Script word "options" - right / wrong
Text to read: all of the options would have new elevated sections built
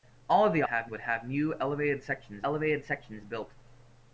wrong